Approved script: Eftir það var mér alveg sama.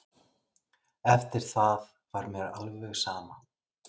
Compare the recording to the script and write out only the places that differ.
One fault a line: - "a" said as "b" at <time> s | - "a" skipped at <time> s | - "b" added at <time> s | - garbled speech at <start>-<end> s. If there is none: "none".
none